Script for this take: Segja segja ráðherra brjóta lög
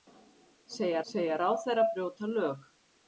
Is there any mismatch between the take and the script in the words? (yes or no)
no